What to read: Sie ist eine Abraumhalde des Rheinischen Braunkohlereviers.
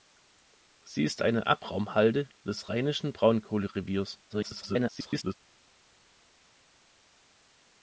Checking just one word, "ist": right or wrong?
right